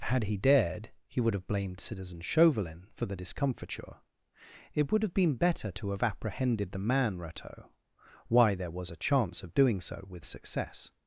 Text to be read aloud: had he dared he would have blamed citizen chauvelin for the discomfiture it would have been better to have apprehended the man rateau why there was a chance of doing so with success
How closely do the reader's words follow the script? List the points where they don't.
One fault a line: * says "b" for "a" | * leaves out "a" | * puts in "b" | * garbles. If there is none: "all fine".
all fine